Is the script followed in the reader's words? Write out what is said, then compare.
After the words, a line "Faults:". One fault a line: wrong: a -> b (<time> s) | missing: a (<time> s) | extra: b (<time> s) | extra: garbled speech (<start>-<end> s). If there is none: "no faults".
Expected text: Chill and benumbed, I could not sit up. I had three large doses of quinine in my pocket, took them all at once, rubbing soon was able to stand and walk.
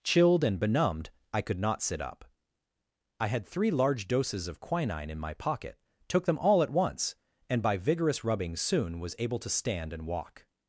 Chilled and benumbed, I could not sit up. I had three large doses of quinine in my pocket, took them all at once, and by vigorous rubbing soon was able to stand and walk.
Faults:
wrong: Chill -> Chilled (0.0 s)
extra: and by vigorous (7.5 s)